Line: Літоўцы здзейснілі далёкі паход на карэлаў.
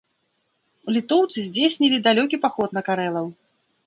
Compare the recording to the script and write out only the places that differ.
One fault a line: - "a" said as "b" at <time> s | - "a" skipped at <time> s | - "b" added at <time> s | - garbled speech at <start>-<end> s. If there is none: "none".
none